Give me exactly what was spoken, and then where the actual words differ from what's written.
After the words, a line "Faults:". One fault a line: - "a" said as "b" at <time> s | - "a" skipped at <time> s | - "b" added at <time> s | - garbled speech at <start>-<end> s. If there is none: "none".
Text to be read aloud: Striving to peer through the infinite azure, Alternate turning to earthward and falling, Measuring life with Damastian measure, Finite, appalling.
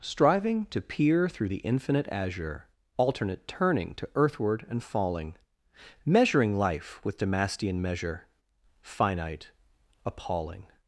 Striving to peer through the infinite azure, Alternate turning to earthward and falling, Measuring life with Damastian measure, Finite, appalling.
Faults:
none